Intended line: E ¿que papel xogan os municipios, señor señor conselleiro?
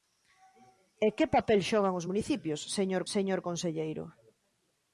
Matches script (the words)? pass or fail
pass